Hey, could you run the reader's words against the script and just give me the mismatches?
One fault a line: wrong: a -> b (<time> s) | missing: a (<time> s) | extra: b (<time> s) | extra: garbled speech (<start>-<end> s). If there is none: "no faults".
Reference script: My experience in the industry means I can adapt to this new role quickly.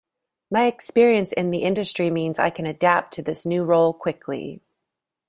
no faults